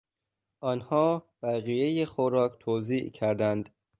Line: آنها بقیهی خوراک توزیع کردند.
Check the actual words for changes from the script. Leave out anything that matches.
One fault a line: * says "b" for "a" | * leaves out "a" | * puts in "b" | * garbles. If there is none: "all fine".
all fine